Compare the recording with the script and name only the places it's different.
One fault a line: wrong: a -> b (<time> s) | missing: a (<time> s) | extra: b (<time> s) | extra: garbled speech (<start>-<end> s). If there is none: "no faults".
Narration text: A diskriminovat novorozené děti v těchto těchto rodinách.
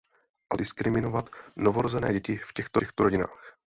no faults